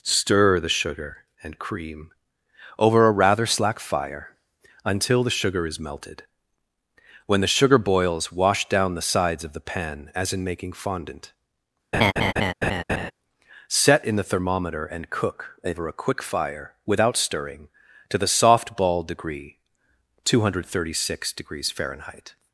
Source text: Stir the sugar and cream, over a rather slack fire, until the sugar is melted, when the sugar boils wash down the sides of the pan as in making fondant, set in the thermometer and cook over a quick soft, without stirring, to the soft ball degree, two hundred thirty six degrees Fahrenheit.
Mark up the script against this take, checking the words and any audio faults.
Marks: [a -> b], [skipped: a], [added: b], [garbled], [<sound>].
Stir the sugar and cream, over a rather slack fire, until the sugar is melted, when the sugar boils wash down the sides of the pan as in making fondant, [laugh] set in the thermometer and cook over a quick [soft, -> fire] without stirring, to the soft ball degree, two hundred thirty six degrees Fahrenheit.